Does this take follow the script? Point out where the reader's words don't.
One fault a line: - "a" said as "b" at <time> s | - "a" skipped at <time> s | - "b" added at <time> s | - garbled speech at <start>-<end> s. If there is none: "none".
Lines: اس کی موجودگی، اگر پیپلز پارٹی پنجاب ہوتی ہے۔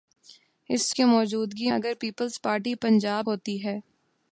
none